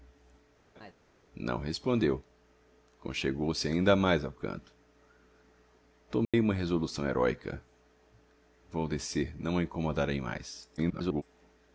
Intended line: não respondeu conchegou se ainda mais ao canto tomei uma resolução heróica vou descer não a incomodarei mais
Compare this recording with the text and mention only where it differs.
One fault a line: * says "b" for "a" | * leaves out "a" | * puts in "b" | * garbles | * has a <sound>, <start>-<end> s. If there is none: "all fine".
* has a laugh, 0.8-0.9 s
* has a dropout, 6.2-6.3 s
* garbles